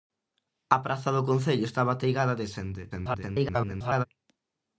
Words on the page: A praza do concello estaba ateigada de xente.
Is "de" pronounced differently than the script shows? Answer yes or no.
no